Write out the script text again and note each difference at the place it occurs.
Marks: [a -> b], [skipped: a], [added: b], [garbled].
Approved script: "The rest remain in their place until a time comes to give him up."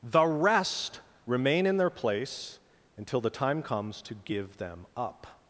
"The rest remain in their place until [a -> the] time comes to give [him -> them] up."